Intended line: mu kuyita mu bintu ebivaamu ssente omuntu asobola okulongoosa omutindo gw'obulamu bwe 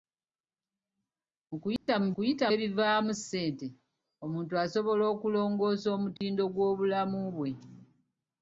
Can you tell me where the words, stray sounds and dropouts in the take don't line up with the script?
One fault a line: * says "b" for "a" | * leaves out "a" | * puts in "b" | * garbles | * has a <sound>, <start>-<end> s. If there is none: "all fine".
* has a dropout, 1.8-1.9 s
* says "kuyita" for "bintu"
* has a dropout, 6.2-6.2 s